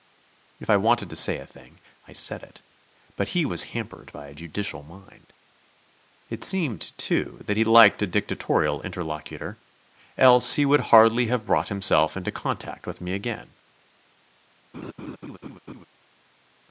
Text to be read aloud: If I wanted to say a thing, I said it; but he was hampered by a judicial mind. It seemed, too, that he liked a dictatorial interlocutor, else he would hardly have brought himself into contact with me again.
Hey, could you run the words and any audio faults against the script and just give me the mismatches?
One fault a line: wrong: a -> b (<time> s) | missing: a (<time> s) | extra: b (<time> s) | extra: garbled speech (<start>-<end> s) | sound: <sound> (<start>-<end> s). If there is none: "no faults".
sound: laugh (14.7-15.9 s)